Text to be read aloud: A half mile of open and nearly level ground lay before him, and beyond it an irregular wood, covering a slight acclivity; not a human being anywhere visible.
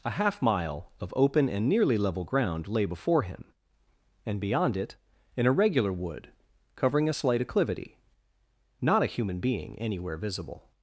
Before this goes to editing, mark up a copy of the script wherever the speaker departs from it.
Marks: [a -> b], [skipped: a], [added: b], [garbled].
A half mile of open and nearly level ground lay before him, and beyond it an irregular wood, covering a slight acclivity; not a human being anywhere visible.